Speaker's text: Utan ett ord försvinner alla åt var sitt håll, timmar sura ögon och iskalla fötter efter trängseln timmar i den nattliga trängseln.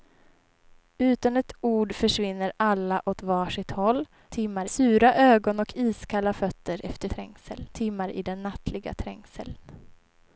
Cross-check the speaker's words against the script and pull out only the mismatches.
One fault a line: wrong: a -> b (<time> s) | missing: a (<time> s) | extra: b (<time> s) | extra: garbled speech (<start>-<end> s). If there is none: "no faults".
no faults